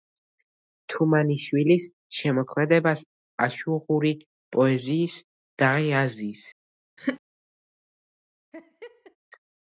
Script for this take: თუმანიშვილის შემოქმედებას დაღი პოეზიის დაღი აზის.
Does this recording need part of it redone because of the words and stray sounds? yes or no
yes